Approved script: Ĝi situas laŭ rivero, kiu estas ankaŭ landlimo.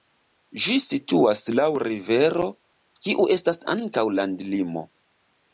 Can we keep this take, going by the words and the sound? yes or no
yes